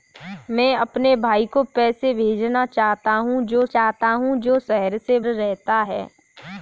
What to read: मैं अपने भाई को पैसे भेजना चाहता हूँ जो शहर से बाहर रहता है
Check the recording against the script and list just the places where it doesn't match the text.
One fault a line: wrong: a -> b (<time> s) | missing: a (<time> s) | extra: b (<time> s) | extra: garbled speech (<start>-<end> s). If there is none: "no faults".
extra: चाहता हूँ जो (3.7 s)
missing: बाहर (5.2 s)